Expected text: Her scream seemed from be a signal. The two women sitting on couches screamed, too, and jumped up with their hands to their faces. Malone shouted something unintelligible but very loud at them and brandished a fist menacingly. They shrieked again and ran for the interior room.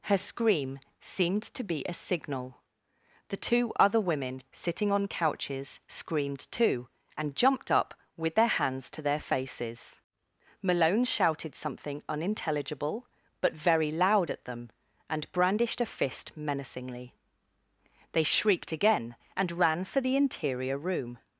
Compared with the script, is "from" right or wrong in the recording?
wrong